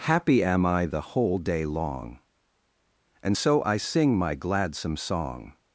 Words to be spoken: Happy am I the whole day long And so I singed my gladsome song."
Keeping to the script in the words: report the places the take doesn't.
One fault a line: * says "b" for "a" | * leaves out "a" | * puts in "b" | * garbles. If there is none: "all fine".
* says "sing" for "singed"